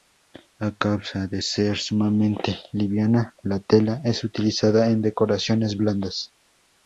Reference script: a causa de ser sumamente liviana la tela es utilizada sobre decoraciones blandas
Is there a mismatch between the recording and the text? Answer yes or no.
yes